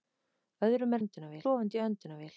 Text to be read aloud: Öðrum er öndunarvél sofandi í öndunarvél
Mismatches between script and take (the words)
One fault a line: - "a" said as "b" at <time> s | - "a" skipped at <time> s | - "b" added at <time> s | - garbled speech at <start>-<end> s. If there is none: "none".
none